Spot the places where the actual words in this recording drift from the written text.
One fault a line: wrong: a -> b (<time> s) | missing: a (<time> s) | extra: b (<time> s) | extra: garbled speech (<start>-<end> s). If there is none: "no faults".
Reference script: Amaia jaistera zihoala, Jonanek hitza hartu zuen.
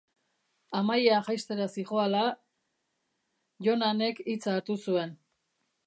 no faults